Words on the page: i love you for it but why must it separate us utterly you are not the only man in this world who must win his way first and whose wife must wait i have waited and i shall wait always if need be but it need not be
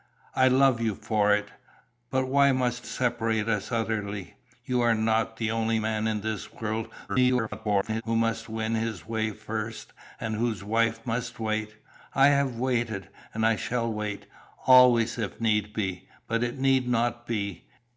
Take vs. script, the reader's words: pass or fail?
fail